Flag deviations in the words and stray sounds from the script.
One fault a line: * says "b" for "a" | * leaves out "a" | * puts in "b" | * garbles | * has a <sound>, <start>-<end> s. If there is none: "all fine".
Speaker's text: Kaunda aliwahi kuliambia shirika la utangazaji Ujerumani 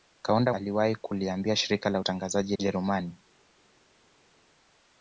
all fine